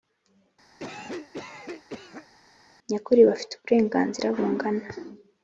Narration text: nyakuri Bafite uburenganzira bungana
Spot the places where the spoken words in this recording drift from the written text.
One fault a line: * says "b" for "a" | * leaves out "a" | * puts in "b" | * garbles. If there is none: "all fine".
all fine